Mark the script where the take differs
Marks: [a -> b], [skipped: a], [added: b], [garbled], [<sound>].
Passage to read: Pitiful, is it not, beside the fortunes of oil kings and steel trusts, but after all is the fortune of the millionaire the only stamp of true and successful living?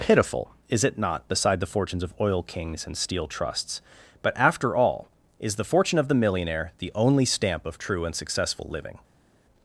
Pitiful, is it not, beside the fortunes of oil kings and steel trusts, but after all is the fortune of the millionaire the only stamp of true and successful living?